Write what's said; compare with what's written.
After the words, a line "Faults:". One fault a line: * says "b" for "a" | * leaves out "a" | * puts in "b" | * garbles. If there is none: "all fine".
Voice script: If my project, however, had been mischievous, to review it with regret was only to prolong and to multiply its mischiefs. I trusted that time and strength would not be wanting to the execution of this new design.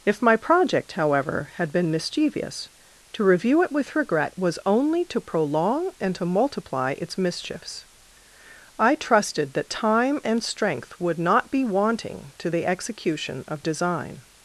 If my project, however, had been mischievous, to review it with regret was only to prolong and to multiply its mischiefs. I trusted that time and strength would not be wanting to the execution of design.
Faults:
* leaves out "this new"